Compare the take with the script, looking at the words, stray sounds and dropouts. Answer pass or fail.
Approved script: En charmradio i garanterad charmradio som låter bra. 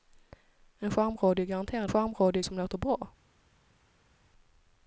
pass